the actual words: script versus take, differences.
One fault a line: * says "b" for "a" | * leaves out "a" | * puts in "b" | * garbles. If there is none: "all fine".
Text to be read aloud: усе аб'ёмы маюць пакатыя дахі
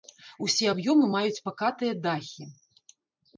all fine